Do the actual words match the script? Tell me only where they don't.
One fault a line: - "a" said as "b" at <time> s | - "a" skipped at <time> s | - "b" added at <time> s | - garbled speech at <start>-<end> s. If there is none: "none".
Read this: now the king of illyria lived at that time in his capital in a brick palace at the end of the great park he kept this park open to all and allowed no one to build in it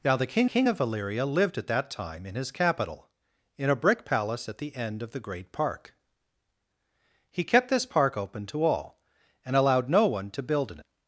- "king" added at 0.5 s